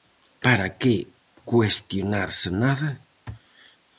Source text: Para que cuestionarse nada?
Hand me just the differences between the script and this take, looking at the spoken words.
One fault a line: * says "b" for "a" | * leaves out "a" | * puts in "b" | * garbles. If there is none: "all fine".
all fine